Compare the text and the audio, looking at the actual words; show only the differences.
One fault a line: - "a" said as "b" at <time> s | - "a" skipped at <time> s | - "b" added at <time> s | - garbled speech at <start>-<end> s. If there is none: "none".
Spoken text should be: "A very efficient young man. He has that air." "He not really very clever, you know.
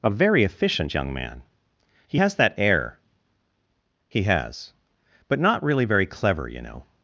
- "has But" added at 4.2 s